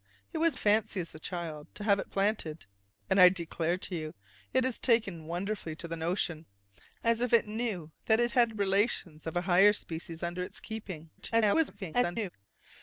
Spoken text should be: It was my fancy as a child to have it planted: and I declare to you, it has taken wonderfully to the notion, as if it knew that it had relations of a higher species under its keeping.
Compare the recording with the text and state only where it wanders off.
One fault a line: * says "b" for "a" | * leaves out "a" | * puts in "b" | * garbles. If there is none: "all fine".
* leaves out "my"
* garbles